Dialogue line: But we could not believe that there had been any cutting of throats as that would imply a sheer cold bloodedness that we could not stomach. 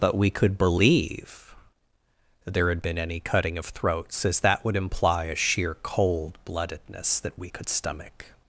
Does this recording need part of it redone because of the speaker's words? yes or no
yes